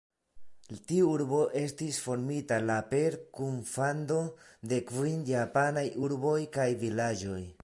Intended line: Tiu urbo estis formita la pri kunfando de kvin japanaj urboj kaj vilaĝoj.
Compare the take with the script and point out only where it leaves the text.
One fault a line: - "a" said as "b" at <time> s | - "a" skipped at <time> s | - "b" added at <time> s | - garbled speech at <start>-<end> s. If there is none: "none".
- "pri" said as "per" at 3.0 s